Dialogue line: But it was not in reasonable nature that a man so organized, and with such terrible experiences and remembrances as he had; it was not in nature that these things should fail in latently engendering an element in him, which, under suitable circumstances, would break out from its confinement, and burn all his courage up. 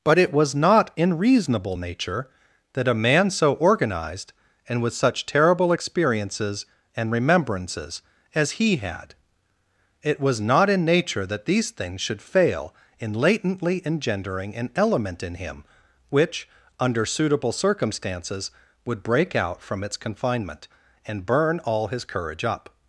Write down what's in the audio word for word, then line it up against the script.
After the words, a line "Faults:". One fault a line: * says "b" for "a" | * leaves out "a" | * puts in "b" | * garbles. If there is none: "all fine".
But it was not in reasonable nature that a man so organized, and with such terrible experiences and remembrances as he had; it was not in nature that these things should fail in latently engendering an element in him, which, under suitable circumstances, would break out from its confinement, and burn all his courage up.
Faults:
all fine